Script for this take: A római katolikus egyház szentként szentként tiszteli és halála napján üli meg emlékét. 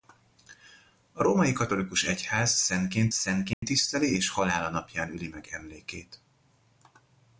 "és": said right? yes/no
yes